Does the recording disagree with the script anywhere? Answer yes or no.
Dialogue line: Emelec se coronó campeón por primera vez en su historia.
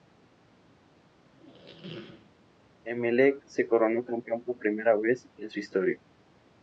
no